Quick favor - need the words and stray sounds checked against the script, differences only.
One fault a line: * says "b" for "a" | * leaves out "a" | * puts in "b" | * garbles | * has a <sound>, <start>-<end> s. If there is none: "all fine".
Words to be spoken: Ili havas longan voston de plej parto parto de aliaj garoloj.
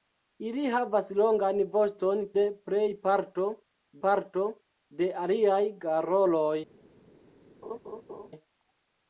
* has a laugh, 7.6-8.3 s